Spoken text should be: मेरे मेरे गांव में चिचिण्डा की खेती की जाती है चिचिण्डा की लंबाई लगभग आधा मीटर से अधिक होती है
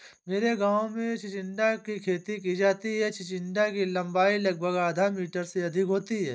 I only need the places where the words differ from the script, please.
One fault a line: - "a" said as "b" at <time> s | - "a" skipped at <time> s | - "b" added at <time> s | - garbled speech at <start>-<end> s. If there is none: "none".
- "मेरे" skipped at 0.6 s